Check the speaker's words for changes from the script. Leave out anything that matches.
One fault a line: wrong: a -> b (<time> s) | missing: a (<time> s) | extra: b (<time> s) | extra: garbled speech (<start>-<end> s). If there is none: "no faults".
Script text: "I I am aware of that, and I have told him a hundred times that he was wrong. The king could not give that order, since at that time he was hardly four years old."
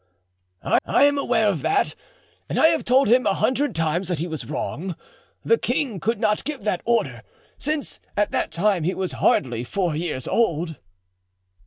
no faults